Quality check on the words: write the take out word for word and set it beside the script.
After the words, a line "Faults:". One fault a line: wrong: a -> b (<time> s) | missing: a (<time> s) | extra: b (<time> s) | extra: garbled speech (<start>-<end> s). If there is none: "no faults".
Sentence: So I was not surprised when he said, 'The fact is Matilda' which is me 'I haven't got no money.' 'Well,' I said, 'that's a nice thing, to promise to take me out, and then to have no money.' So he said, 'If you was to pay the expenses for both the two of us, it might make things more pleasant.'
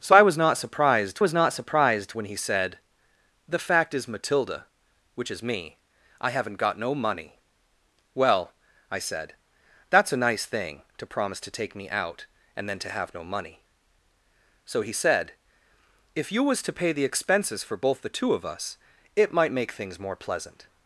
So I was not surprised was not surprised when he said, 'The fact is Matilda' which is me 'I haven't got no money.' 'Well,' I said, 'that's a nice thing, to promise to take me out, and then to have no money.' So he said, 'If you was to pay the expenses for both the two of us, it might make things more pleasant.'
Faults:
extra: was not surprised (1.2 s)